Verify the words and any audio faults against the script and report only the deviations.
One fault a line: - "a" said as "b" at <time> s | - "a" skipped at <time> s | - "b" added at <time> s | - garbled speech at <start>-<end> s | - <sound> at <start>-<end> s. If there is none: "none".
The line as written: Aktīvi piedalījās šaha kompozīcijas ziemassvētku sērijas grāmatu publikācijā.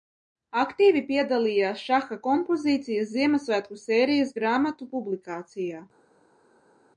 none